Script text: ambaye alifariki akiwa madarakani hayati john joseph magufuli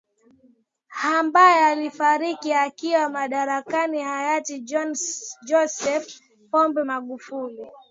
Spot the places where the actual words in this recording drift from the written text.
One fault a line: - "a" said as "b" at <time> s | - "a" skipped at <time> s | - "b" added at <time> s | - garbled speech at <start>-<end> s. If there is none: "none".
- "pombe" added at 6.5 s